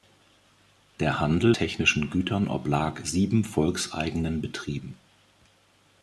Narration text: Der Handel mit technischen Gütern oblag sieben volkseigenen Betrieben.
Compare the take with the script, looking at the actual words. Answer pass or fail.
fail